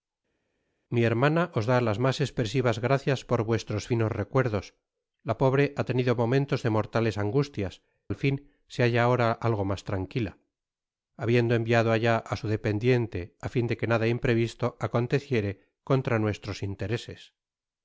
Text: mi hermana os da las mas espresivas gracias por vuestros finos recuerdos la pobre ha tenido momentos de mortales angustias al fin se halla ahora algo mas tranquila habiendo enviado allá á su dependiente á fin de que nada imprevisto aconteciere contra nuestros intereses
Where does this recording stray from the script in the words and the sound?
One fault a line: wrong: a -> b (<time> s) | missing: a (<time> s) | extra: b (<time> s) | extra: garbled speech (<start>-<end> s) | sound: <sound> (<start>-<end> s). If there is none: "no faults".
no faults